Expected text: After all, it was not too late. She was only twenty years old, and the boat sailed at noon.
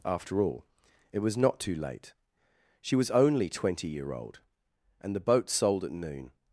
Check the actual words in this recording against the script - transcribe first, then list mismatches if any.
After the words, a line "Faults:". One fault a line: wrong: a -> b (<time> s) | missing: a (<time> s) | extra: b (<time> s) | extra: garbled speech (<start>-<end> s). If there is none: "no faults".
After all, it was not too late. She was only twenty year old, and the boat sold at noon.
Faults:
wrong: years -> year (3.9 s)
wrong: sailed -> sold (5.5 s)